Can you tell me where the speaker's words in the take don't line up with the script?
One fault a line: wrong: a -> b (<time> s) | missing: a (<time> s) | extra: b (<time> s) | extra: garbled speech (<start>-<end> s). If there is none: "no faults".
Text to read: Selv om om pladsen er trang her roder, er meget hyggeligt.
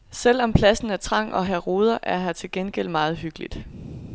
missing: om (0.5 s)
extra: og (1.3 s)
extra: her til gengæld (2.2 s)